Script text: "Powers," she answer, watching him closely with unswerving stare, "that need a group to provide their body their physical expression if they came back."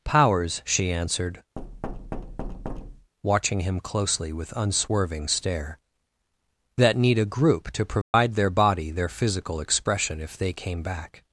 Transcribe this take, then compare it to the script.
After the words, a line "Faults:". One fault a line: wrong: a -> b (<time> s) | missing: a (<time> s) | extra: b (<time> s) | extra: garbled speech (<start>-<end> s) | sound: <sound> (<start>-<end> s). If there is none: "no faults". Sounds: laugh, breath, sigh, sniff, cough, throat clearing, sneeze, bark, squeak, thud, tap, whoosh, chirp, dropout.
"Powers," she answered, watching him closely with unswerving stare, "that need a group to provide their body their physical expression if they came back."
Faults:
wrong: answer -> answered (0.9 s)
sound: thud (1.6-3.1 s)
sound: dropout (8.0-8.1 s)